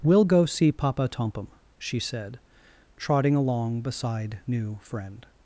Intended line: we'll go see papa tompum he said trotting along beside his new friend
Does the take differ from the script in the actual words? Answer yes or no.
yes